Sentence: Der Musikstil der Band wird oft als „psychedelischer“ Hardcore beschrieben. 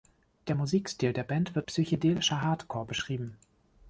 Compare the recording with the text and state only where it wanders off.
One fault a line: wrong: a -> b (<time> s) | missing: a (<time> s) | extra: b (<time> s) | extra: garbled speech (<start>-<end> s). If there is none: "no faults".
missing: oft als (1.7 s)